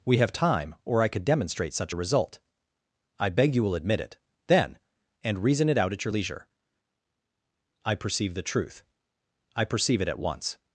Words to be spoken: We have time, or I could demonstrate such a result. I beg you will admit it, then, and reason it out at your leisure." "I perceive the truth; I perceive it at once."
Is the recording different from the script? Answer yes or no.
no